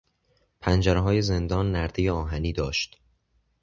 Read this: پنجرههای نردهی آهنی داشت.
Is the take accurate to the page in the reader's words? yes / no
no